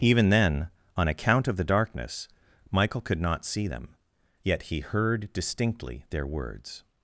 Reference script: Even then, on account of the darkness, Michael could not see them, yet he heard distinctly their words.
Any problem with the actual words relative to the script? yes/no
no